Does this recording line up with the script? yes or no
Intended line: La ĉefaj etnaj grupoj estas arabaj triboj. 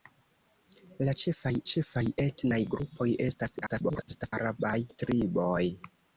no